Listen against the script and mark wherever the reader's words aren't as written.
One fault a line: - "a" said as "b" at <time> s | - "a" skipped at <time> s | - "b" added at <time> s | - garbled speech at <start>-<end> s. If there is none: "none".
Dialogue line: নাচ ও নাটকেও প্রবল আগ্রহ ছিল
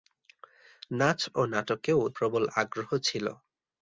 none